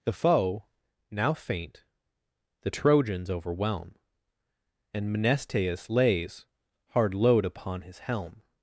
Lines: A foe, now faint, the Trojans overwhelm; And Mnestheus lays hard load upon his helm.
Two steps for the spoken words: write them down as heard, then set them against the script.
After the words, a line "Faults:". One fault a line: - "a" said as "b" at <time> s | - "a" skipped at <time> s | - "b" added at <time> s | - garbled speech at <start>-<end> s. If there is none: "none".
The foe, now faint, the Trojans overwhelm; And Mnestheus lays hard load upon his helm.
Faults:
- "A" said as "The" at 0.0 s